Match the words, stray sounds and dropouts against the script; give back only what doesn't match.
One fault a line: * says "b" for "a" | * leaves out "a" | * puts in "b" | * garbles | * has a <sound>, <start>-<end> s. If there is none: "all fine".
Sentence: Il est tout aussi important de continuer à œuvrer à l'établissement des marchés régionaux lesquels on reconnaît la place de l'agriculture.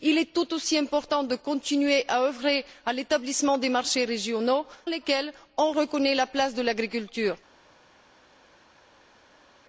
all fine